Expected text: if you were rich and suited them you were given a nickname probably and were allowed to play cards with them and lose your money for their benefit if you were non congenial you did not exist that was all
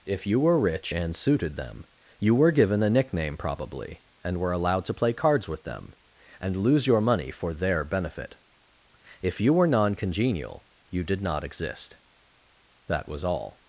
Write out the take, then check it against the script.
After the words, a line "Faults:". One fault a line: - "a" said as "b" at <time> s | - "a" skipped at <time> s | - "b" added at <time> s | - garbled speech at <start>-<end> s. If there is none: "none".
if you were rich and suited them you were given a nickname probably and were allowed to play cards with them and lose your money for their benefit if you were non congenial you did not exist that was all
Faults:
none